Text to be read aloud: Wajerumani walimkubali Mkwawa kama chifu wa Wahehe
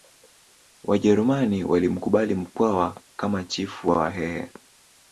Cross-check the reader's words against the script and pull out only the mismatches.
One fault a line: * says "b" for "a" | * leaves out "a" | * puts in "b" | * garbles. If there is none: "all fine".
all fine